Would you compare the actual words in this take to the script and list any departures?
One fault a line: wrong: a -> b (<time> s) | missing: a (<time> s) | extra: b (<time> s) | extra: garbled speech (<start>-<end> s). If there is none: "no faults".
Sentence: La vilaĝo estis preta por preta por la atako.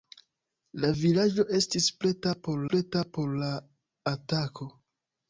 no faults